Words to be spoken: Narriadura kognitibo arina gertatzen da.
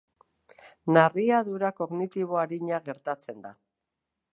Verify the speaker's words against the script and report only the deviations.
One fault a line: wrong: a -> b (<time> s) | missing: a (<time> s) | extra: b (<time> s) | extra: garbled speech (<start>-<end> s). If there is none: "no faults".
no faults